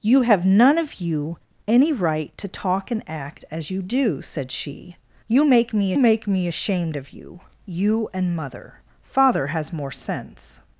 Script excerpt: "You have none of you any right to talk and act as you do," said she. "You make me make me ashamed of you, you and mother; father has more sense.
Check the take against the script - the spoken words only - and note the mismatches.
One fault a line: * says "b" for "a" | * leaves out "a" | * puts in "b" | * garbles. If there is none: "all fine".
all fine